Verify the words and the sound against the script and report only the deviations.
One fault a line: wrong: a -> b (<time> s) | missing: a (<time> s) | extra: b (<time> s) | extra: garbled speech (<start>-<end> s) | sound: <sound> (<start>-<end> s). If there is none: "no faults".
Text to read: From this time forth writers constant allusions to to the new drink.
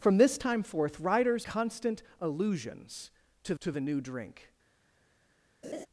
sound: laugh (5.6-5.9 s)